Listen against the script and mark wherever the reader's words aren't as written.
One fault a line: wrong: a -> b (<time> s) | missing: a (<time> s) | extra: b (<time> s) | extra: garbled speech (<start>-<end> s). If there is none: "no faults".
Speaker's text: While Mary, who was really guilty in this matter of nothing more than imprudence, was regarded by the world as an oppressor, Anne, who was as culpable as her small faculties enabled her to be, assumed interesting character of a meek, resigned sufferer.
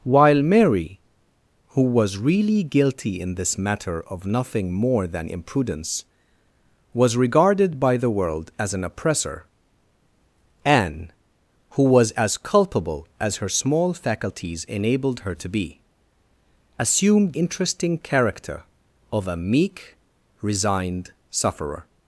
no faults